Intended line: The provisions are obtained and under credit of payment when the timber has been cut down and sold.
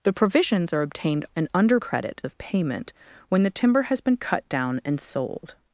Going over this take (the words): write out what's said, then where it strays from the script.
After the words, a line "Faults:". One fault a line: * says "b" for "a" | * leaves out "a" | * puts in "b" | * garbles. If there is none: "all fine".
The provisions are obtained and under credit of payment when the timber has been cut down and sold.
Faults:
all fine